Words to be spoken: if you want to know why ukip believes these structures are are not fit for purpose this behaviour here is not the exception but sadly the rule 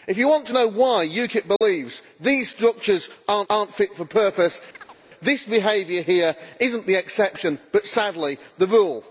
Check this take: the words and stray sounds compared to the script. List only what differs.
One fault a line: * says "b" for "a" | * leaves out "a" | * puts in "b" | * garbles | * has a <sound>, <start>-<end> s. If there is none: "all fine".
* has a dropout, 1.6-1.6 s
* has a chirp, 4.7-5.0 s